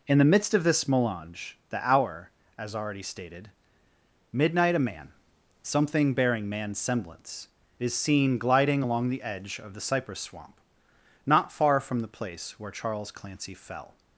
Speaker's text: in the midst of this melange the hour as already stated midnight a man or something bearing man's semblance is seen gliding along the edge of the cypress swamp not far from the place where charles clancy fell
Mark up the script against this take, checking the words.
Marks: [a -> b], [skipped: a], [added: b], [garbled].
in the midst of this melange the hour as already stated midnight a man [skipped: or] something bearing man's semblance is seen gliding along the edge of the cypress swamp not far from the place where charles clancy fell